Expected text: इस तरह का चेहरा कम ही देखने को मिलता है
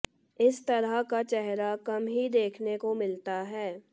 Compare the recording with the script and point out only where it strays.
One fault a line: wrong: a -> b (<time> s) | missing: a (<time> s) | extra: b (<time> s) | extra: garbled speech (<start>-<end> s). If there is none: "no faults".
no faults